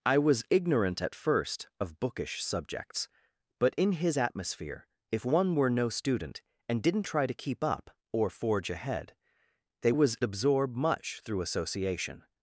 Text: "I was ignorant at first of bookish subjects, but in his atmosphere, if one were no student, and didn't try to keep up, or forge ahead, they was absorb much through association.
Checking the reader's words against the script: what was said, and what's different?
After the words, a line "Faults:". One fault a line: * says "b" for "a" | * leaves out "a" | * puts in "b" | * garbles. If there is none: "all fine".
"I was ignorant at first of bookish subjects, but in his atmosphere, if one were no student, and didn't try to keep up, or forge ahead, they was absorb much through association.
Faults:
all fine